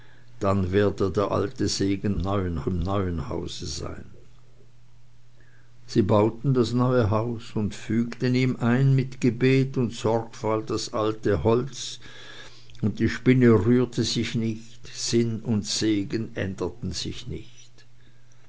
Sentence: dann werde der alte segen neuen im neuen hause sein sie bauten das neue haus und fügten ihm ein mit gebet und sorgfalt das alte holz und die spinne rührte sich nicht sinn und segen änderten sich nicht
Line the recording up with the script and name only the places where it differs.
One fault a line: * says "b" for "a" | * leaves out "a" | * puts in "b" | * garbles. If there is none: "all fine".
all fine